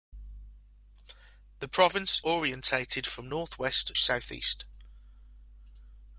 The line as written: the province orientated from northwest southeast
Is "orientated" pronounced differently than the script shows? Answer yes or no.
no